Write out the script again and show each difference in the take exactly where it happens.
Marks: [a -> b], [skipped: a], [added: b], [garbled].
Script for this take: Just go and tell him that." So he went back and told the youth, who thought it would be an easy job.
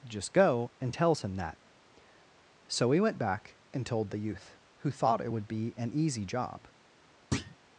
Just go and [tell -> tells] him that." So he went back and told the youth, who thought it would be an easy job.